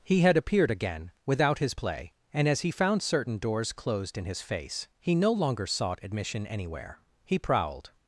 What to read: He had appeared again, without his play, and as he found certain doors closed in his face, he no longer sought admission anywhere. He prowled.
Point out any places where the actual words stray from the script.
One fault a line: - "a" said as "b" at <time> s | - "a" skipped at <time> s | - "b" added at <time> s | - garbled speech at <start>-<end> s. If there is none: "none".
none